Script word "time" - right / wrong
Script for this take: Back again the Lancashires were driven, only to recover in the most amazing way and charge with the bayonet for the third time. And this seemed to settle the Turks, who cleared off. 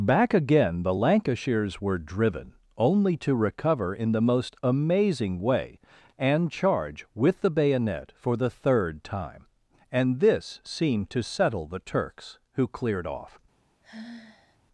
right